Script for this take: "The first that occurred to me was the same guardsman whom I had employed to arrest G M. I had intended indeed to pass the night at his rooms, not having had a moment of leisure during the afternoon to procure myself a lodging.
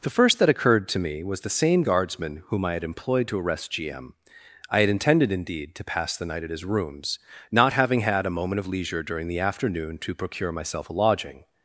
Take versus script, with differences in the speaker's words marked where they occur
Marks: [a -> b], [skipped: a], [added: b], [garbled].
"The first that occurred to me was the same guardsman whom I had employed to arrest G M. I had intended indeed to pass the night at his rooms, not having had a moment of leisure during the afternoon to procure myself a lodging.